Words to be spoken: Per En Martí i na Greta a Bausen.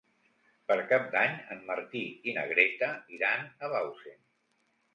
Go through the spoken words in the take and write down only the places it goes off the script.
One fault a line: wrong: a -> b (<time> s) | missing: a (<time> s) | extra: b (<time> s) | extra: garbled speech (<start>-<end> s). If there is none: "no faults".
extra: Cap d'Any (0.9 s)
extra: iran (3.2 s)